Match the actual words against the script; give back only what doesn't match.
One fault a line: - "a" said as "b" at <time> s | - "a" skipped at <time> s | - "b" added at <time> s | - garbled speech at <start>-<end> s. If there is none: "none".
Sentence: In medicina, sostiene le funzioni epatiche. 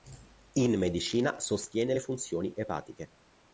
none